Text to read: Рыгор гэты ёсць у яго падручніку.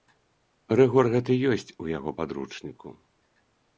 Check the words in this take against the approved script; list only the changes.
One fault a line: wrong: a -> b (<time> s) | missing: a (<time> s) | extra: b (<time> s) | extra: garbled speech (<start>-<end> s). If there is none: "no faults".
no faults